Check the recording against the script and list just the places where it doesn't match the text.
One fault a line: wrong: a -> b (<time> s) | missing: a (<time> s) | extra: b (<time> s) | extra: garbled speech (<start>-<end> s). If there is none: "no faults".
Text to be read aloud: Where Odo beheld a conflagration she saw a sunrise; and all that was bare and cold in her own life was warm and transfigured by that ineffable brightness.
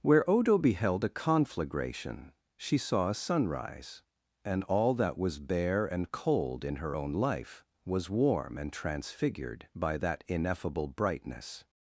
no faults